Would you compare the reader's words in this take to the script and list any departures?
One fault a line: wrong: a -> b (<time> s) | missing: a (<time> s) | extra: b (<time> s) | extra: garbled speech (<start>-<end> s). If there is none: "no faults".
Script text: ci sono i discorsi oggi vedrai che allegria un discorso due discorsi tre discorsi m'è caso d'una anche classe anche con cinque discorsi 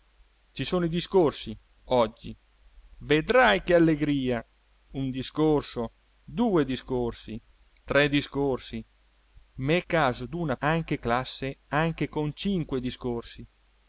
no faults